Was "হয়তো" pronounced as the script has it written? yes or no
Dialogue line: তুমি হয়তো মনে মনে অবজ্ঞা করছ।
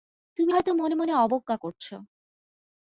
yes